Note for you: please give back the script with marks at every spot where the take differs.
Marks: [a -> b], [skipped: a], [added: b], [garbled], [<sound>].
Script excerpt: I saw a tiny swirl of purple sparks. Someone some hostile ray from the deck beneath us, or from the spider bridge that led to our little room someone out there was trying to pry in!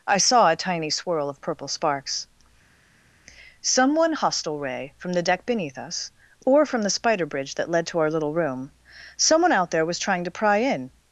I saw a tiny swirl of purple sparks. Someone [skipped: some] hostile ray from the deck beneath us, or from the spider bridge that led to our little room someone out there was trying to pry in!